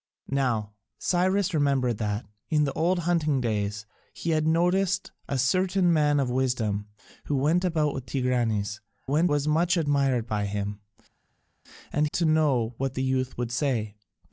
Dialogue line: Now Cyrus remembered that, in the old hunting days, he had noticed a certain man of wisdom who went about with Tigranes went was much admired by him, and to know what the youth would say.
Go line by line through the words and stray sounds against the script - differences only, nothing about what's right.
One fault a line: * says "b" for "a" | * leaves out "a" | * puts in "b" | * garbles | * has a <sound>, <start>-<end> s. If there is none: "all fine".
all fine